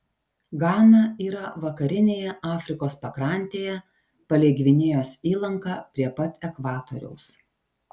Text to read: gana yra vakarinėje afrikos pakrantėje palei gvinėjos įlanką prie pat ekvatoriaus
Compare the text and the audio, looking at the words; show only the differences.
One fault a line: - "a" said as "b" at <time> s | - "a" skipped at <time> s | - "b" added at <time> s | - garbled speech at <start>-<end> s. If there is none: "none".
none